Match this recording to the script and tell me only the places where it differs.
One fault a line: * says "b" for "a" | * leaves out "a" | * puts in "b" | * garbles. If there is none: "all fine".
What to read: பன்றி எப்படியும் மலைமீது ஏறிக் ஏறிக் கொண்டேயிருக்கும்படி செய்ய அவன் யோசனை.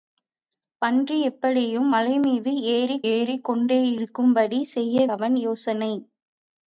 all fine